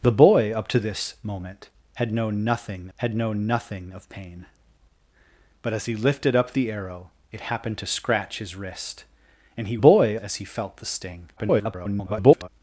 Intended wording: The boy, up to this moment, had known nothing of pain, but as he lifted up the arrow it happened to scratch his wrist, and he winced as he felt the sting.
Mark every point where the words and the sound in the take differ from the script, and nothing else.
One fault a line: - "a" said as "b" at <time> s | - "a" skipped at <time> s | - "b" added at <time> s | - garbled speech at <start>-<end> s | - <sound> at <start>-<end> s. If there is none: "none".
- "had known nothing" added at 3.0 s
- "winced" said as "boy" at 9.8 s
- garbled speech at 11.4-12.5 s